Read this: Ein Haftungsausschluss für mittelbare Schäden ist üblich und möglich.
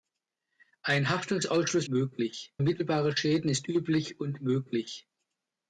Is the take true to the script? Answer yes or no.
no